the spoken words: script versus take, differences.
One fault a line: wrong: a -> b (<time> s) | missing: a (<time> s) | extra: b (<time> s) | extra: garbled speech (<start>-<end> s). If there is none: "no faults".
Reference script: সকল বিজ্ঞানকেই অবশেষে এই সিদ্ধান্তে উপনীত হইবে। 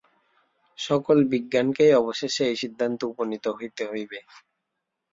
extra: হইতে (3.6 s)